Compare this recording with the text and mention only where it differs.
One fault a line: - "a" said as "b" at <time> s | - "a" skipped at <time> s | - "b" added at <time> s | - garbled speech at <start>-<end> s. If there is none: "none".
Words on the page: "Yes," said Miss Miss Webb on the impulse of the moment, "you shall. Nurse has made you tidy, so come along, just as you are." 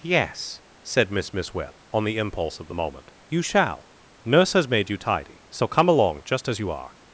none